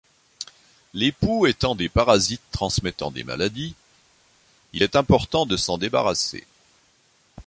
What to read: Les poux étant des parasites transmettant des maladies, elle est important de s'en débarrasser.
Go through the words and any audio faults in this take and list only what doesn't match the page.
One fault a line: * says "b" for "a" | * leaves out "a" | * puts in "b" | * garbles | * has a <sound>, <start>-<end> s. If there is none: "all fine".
* says "il" for "elle"